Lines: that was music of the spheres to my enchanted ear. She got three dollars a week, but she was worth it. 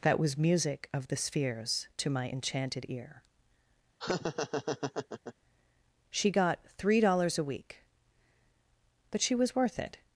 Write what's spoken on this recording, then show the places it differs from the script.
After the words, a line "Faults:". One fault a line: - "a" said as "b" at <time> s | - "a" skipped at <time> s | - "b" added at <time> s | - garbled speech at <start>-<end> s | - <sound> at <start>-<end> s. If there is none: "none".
that was music of the spheres to my enchanted ear. She got three dollars a week, but she was worth it.
Faults:
- laugh at 4.0-5.3 s